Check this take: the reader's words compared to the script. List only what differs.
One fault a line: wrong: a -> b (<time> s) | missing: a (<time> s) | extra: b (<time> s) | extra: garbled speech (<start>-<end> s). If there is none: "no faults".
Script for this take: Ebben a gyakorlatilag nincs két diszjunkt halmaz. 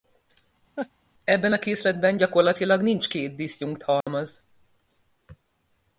extra: készletben (1.6 s)